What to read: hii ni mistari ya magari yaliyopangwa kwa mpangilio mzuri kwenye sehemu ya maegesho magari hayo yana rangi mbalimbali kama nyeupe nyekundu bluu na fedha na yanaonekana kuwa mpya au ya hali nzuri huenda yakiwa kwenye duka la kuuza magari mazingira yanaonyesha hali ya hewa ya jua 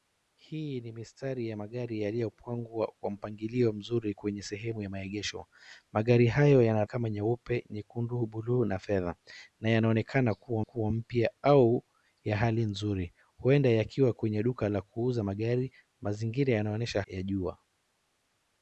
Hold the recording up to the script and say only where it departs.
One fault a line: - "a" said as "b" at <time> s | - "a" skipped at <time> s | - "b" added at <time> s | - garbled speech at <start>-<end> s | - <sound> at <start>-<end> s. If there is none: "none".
- "rangi mbalimbali" skipped at 6.8 s
- "kuwa" added at 10.6 s
- "hali ya hewa" skipped at 17.0 s